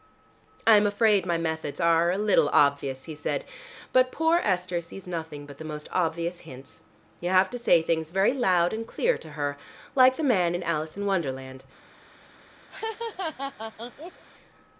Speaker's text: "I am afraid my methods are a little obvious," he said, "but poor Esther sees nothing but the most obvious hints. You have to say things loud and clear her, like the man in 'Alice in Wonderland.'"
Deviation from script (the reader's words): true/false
true